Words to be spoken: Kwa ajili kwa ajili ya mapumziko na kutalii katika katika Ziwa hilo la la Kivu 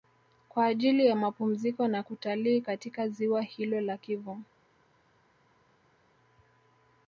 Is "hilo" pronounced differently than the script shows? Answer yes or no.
no